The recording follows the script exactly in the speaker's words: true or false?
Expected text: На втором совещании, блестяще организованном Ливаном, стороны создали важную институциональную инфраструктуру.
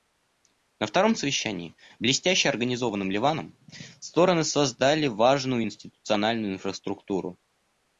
true